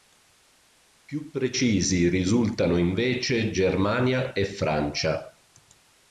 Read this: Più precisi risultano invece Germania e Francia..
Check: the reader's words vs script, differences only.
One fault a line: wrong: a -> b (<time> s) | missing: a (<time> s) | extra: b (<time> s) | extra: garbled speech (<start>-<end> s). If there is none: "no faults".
no faults